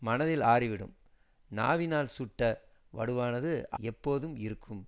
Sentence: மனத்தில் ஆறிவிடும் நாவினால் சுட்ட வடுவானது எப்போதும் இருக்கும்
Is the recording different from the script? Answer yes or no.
no